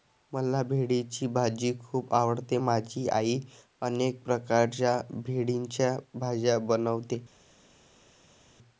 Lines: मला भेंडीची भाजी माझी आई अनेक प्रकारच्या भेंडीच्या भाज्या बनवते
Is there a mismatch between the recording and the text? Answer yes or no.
yes